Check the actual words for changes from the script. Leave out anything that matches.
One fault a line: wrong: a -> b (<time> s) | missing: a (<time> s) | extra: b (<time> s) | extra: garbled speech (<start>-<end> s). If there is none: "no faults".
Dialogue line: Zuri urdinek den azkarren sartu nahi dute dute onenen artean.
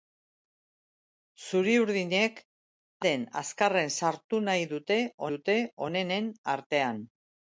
no faults